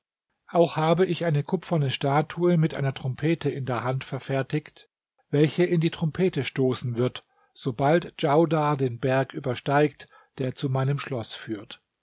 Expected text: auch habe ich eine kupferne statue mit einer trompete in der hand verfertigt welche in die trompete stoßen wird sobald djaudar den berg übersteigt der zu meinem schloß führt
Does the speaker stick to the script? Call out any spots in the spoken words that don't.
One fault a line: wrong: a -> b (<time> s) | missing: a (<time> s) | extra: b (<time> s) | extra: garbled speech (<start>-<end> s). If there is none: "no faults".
no faults